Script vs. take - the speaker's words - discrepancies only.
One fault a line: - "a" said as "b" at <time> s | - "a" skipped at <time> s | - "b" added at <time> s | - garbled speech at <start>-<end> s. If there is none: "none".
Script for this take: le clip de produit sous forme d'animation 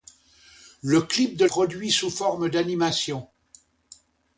none